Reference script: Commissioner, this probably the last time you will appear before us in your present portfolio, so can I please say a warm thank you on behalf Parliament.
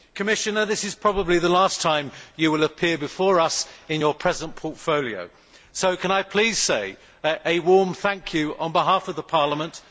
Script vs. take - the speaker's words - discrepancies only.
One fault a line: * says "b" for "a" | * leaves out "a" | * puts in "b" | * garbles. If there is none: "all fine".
* puts in "is"
* puts in "of"